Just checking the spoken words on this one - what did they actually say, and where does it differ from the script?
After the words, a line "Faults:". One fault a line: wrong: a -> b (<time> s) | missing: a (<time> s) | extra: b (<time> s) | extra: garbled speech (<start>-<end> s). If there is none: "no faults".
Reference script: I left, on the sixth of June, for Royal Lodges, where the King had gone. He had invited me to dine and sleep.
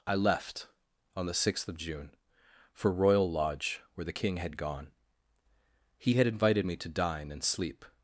I left, on the sixth of June, for Royal Lodge, where the King had gone. He had invited me to dine and sleep.
Faults:
wrong: Lodges -> Lodge (3.3 s)